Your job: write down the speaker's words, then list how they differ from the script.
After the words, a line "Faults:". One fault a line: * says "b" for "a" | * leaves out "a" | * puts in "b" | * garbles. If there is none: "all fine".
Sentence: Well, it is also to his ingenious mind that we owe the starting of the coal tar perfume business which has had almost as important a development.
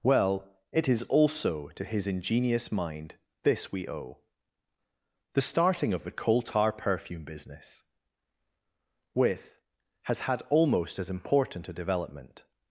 Well, it is also to his ingenious mind this we owe the starting of the coal tar perfume business with has had almost as important a development.
Faults:
* says "this" for "that"
* says "with" for "which"